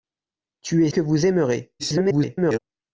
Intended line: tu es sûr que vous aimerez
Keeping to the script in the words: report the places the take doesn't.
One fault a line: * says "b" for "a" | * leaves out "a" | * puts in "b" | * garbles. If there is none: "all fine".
* leaves out "sûr"
* garbles